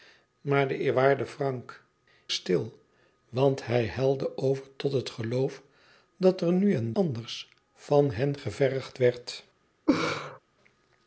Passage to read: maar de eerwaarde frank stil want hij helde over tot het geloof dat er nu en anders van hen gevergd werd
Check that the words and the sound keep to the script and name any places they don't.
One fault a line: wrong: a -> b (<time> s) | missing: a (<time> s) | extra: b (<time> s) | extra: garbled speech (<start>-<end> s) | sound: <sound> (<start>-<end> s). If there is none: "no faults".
sound: laugh (9.9-10.4 s)